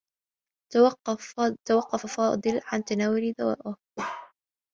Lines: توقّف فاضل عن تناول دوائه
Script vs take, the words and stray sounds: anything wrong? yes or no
yes